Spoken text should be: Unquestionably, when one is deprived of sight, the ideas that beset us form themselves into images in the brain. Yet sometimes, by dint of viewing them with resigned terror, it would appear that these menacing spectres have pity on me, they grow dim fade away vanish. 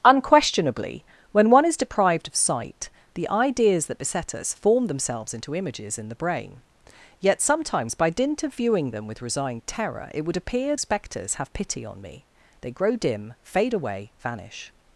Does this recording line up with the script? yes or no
no